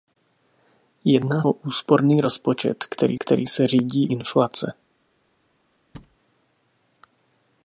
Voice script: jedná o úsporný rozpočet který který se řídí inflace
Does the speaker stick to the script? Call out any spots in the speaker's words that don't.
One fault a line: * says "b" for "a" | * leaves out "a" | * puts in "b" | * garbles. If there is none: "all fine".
all fine